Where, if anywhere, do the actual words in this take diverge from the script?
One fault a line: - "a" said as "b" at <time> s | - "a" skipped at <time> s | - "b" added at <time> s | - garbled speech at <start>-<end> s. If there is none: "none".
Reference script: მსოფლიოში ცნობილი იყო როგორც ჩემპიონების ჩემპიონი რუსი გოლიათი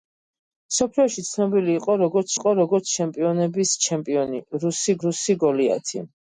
- "იყო როგორც" added at 2.4 s
- "რუსი" added at 5.1 s